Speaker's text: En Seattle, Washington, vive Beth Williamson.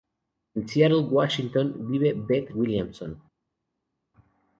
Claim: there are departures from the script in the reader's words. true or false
false